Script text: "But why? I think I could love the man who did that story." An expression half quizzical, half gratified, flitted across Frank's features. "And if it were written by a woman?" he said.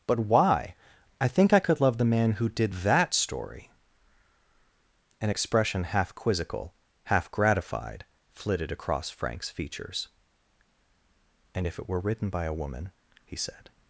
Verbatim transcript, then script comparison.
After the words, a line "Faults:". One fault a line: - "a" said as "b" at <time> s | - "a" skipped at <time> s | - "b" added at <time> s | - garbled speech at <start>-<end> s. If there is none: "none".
"But why? I think I could love the man who did that story." An expression half quizzical, half gratified, flitted across Frank's features. "And if it were written by a woman?" he said.
Faults:
none